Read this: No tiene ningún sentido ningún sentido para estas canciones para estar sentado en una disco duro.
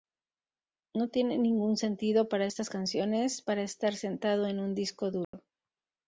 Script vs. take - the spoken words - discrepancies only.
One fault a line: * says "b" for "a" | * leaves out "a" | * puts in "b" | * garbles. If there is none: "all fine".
* leaves out "ningún sentido"
* says "un" for "una"